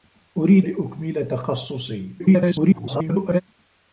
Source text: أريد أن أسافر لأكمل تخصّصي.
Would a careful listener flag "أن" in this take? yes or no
yes